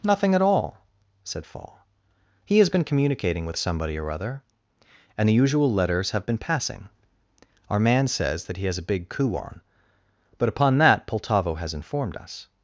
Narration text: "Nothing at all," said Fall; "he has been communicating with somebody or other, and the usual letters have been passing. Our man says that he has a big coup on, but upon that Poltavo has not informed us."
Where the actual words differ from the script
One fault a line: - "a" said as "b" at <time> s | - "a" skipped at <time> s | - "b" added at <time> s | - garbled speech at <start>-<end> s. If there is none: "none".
- "not" skipped at 11.7 s